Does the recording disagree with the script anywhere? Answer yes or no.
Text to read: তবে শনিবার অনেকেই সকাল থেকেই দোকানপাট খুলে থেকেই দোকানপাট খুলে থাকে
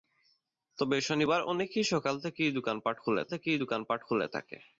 no